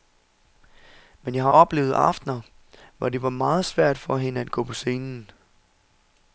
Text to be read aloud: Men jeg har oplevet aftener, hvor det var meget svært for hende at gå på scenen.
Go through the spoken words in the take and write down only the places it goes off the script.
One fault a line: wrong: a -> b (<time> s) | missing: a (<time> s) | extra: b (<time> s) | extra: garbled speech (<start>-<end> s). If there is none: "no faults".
no faults